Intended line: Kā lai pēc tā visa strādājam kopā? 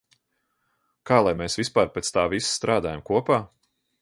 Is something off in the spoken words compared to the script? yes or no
yes